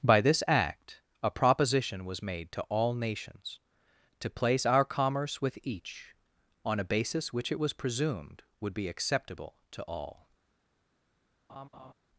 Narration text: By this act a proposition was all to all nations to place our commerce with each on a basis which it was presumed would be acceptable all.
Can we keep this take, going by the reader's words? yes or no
no